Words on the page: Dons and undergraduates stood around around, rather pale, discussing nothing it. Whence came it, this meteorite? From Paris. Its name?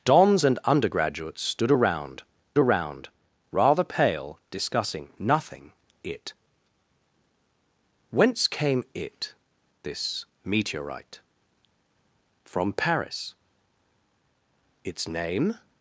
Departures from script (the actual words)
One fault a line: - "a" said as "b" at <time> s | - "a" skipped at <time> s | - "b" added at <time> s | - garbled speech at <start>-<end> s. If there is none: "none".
none